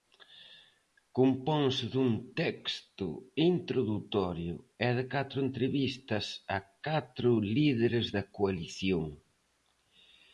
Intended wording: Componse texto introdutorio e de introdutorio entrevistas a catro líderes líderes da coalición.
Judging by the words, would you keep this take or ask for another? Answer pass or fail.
fail